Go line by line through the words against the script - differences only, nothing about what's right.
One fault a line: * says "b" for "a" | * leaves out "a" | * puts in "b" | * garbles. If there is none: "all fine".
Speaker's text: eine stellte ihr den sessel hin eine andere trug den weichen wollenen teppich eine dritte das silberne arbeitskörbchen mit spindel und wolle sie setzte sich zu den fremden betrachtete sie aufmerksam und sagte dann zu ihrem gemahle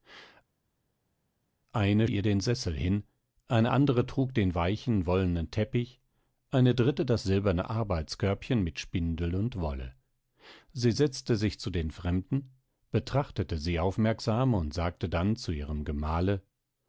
* leaves out "stellte"